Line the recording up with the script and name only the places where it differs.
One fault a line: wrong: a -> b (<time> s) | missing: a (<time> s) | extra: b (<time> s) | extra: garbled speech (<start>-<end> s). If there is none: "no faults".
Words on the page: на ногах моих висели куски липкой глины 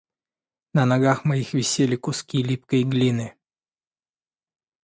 no faults